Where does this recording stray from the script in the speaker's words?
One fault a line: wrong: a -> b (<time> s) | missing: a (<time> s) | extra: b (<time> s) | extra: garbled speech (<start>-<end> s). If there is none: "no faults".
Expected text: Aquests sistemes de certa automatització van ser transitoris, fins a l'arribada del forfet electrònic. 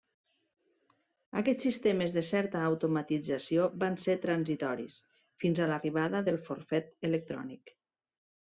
no faults